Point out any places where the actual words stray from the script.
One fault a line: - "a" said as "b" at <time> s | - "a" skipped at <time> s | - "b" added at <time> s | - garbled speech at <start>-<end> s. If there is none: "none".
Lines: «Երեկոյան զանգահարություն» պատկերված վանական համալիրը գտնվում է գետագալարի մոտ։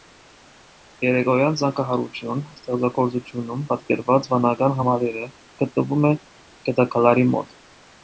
- "ստեղծագործությունում" added at 2.5 s